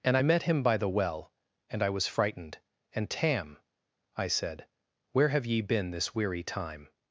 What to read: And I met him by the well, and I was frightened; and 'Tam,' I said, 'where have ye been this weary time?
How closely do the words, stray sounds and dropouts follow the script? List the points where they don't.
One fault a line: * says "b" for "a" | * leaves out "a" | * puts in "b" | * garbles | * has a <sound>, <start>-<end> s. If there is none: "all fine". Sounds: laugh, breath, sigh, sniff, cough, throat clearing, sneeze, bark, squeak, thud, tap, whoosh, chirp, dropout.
all fine